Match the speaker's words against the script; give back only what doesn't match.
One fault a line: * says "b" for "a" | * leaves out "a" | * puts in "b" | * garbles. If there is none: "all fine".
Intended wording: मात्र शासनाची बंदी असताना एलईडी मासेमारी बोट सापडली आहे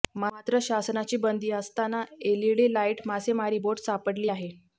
* puts in "लाईट"